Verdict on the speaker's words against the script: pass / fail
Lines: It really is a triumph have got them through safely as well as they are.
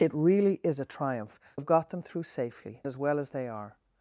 pass